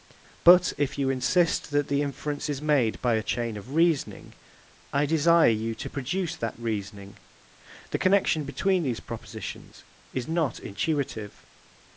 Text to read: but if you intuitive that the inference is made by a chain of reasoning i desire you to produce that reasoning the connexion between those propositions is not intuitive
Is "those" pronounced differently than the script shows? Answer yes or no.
yes